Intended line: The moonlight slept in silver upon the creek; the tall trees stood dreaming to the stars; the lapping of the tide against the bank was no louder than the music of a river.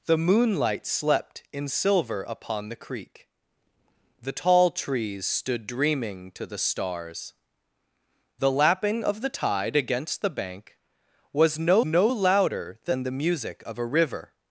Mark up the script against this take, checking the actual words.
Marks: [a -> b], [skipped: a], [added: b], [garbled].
The moonlight slept in silver upon the creek; the tall trees stood dreaming to the stars; the lapping of the tide against the bank was no [added: no] louder than the music of a river.